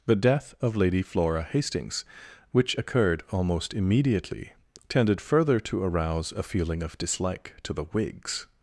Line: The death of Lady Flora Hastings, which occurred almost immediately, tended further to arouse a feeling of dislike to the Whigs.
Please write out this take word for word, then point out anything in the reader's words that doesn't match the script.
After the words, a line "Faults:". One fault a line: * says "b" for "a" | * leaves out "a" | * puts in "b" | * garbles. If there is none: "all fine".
The death of Lady Flora Hastings, which occurred almost immediately, tended further to arouse a feeling of dislike to the Whigs.
Faults:
all fine